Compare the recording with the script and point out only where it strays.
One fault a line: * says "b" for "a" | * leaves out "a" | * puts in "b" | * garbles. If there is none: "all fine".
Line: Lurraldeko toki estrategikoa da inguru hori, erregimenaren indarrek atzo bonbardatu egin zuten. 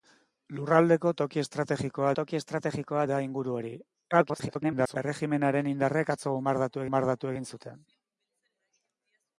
* puts in "toki estrategikoa"
* garbles
* puts in "bonbardatu"